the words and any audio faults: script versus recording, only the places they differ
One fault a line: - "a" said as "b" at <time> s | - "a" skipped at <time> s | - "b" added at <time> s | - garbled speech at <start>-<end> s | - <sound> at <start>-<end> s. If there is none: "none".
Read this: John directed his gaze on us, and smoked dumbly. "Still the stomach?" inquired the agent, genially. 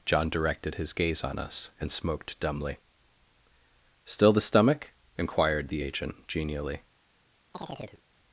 - chirp at 7.5-8.0 s